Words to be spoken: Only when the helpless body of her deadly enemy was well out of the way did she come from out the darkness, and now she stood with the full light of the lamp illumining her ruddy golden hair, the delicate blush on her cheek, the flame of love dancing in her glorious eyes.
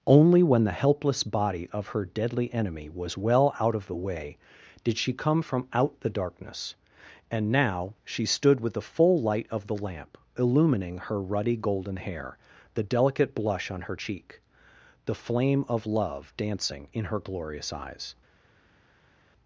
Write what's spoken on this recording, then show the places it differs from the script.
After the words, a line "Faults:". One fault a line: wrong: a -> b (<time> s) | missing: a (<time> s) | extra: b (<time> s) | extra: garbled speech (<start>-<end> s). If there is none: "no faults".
Only when the helpless body of her deadly enemy was well out of the way did she come from out the darkness, and now she stood with the full light of the lamp illumining her ruddy golden hair, the delicate blush on her cheek, the flame of love dancing in her glorious eyes.
Faults:
no faults